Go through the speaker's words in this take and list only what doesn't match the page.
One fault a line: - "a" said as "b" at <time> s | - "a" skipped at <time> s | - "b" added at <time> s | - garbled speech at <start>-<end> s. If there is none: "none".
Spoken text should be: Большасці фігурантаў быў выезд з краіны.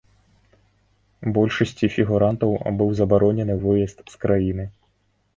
- "забаронены" added at 3.0 s